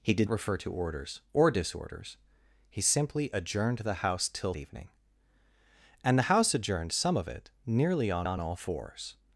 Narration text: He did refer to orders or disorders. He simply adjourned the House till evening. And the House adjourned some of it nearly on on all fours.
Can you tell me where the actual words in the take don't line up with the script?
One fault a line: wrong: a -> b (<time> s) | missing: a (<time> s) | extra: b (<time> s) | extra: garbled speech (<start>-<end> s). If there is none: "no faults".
no faults